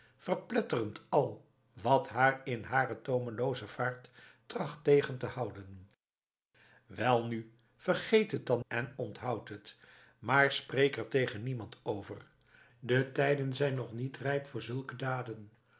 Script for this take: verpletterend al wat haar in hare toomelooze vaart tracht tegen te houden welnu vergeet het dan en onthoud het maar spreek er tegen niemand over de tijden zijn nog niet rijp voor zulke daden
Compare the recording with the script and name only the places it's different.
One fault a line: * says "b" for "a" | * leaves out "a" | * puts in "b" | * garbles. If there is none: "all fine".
all fine